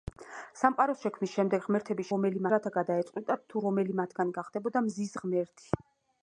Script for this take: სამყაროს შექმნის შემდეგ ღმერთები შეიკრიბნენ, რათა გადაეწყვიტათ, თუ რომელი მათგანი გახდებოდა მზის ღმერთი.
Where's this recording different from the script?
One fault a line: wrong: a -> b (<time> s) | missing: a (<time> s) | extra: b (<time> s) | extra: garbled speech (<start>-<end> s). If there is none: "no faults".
wrong: შეიკრიბნენ -> რომელი (2.1 s)